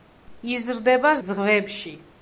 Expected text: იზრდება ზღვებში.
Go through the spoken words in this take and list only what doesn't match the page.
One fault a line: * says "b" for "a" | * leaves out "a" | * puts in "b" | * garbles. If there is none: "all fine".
all fine